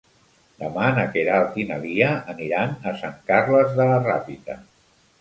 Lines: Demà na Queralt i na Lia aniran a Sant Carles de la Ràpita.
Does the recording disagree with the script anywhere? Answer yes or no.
no